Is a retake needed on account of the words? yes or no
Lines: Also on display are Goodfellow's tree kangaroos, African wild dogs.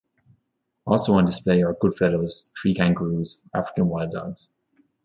no